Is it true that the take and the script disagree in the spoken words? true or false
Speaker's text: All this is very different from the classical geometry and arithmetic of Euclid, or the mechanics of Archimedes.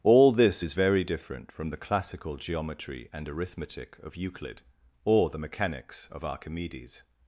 false